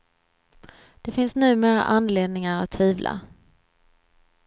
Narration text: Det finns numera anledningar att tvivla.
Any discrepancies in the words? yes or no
no